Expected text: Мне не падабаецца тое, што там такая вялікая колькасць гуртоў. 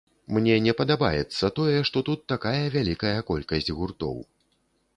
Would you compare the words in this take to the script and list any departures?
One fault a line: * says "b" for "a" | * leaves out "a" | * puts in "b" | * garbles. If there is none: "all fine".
* says "тут" for "там"